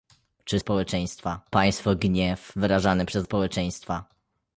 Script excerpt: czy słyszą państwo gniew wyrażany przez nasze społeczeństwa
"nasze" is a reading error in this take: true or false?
true